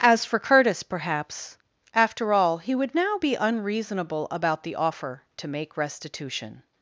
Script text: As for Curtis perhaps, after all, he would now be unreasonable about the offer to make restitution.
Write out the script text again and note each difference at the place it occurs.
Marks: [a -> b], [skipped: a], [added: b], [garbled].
As for Curtis perhaps, after all, he would now be unreasonable about the offer to make restitution.